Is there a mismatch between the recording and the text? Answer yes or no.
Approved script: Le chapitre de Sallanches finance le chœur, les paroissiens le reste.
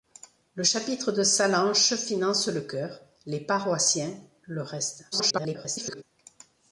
yes